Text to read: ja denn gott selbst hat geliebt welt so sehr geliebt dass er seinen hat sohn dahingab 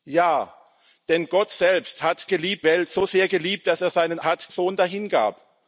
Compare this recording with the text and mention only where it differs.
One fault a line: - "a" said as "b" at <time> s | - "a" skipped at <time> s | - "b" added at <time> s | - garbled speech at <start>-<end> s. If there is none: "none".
none